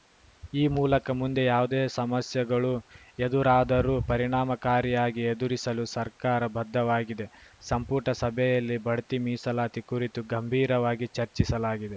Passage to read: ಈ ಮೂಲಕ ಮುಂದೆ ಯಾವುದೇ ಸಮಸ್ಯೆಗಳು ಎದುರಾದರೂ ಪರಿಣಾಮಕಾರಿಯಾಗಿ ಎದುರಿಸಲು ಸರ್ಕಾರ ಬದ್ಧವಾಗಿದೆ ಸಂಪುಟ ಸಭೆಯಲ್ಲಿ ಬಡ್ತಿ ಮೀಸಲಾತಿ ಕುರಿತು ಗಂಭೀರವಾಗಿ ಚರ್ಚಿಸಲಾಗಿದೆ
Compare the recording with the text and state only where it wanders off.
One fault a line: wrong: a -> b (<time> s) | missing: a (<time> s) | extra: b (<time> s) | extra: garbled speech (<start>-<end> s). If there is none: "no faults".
no faults